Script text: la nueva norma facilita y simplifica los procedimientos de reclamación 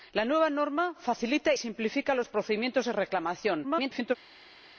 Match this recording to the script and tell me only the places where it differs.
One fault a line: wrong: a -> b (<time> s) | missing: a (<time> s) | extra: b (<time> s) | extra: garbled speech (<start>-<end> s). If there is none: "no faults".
missing: y (1.5 s)
extra: garbled speech (3.6-4.2 s)